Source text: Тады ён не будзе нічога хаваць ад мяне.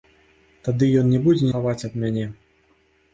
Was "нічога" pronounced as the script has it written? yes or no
no